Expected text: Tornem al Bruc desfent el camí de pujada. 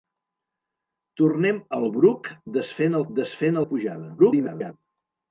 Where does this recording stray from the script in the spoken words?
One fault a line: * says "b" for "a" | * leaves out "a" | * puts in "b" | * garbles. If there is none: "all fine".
* says "desfent" for "camí"
* garbles